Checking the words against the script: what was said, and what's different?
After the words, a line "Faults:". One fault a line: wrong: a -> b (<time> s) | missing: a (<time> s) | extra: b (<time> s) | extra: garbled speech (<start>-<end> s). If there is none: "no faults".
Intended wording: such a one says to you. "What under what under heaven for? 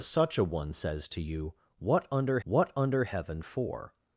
such a one says to you. "What under what under heaven for?
Faults:
no faults